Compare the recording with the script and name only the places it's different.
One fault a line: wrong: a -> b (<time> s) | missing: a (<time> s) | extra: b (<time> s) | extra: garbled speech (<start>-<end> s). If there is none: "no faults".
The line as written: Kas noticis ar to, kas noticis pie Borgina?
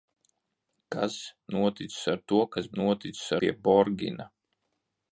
no faults